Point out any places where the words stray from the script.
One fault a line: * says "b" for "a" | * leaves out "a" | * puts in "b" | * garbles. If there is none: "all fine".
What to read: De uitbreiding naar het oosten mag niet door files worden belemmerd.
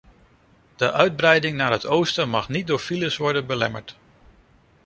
all fine